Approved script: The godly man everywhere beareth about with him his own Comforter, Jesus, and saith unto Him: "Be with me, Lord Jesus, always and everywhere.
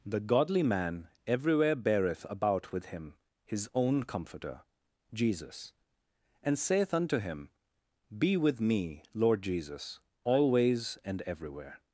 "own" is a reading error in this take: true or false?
false